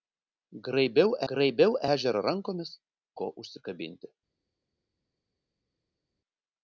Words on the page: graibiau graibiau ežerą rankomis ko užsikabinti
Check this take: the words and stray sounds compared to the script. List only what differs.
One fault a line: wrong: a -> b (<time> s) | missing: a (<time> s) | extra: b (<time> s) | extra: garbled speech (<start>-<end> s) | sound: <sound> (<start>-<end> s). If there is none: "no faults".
no faults